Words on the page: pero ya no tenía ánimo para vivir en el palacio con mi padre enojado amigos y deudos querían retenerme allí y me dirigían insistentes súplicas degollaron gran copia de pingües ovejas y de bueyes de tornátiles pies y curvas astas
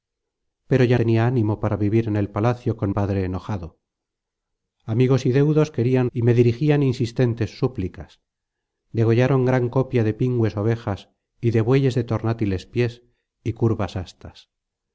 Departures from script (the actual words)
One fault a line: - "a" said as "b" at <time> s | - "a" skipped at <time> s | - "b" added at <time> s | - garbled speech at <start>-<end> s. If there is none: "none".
- "no" skipped at 1.0 s
- "mi" skipped at 2.9 s
- "retenerme allí" skipped at 6.1 s